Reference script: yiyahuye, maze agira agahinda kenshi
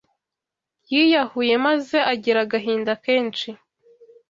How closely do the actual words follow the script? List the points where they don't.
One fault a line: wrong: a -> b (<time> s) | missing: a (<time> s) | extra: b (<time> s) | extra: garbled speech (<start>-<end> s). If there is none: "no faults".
no faults